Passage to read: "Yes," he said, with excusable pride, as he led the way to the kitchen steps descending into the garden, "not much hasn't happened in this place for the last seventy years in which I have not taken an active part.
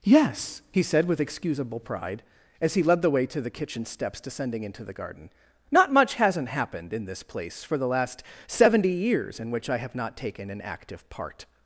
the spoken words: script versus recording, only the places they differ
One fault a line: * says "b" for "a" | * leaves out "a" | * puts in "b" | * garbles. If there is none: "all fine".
all fine